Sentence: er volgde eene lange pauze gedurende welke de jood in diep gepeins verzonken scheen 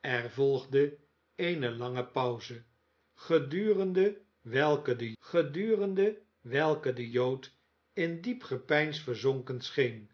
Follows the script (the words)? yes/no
no